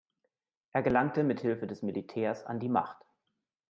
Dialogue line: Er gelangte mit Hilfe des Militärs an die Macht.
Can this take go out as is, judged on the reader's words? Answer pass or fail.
pass